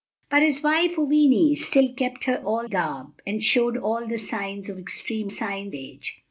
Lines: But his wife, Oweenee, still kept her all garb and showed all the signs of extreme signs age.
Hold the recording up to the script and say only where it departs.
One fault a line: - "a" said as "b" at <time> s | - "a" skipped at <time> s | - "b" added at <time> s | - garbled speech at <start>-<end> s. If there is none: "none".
none